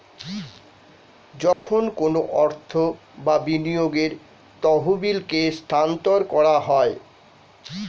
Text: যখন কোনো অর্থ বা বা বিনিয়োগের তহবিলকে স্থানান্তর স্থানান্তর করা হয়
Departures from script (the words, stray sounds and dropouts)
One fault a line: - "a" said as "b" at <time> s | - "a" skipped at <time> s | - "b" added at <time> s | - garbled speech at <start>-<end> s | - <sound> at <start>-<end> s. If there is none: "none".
- dropout at 1.5-1.7 s
- "বা" skipped at 3.3 s
- "স্থানান্তর" skipped at 6.2 s